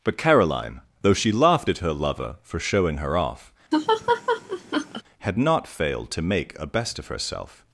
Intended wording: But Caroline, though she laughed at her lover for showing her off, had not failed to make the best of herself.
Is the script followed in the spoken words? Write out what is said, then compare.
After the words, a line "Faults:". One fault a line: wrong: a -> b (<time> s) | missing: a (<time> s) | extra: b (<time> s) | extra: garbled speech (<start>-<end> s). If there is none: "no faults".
But Caroline, though she laughed at her lover for showing her off, had not failed to make a best of herself.
Faults:
wrong: the -> a (6.6 s)